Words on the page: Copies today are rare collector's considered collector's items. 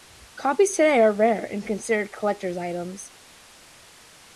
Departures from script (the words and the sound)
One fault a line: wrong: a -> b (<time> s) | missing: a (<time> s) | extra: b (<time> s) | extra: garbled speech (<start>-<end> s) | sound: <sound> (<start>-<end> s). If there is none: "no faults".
wrong: collector's -> and (1.4 s)